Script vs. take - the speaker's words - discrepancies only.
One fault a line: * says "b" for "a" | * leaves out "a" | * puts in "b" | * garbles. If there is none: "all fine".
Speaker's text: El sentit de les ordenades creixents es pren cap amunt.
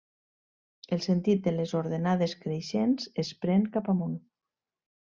all fine